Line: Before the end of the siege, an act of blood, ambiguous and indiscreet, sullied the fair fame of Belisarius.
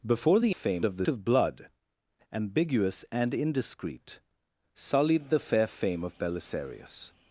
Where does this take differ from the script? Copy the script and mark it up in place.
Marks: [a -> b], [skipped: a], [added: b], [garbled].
Before the [end -> fame] of the [skipped: siege, an act] of blood, ambiguous and indiscreet, sullied the fair fame of Belisarius.